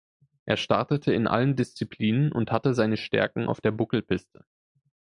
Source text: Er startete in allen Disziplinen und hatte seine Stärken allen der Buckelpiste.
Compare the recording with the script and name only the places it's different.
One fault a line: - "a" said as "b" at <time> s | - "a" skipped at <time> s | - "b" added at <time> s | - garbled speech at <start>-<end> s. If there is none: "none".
- "allen" said as "auf" at 3.4 s